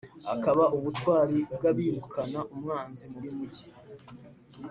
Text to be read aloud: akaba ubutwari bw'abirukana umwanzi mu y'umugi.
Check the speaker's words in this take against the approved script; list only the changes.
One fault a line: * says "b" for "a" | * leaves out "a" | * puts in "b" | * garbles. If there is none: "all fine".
all fine